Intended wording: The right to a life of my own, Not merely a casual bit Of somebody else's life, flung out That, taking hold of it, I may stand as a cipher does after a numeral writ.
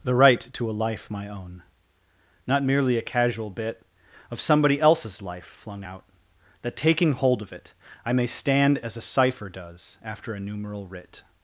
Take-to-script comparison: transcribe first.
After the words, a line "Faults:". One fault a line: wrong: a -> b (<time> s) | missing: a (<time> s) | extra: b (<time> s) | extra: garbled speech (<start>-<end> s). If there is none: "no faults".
The right to a life my own, Not merely a casual bit Of somebody else's life, flung out That, taking hold of it, I may stand as a cipher does after a numeral writ.
Faults:
missing: of (1.1 s)